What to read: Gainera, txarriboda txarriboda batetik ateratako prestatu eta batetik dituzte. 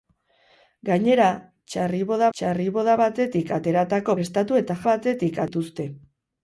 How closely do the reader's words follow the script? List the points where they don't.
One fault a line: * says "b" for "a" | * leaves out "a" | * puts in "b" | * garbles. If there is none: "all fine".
all fine